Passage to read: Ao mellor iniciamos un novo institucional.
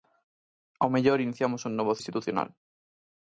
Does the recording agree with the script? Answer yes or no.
yes